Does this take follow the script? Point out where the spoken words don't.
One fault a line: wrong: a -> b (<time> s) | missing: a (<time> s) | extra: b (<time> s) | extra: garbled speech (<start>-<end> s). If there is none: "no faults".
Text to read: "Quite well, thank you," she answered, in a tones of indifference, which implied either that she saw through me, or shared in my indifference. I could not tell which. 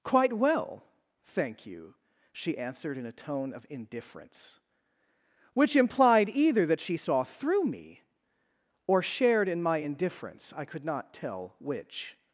wrong: tones -> tone (3.1 s)